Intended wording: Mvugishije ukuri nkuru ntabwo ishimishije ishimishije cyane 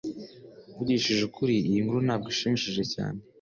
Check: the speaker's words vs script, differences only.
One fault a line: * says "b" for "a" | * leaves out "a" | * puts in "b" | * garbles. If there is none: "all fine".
* puts in "iyi"
* leaves out "ishimishije"